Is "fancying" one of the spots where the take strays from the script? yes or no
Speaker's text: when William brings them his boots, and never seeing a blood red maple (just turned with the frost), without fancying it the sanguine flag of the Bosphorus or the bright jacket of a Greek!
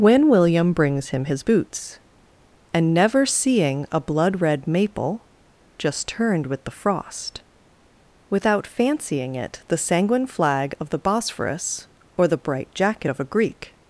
no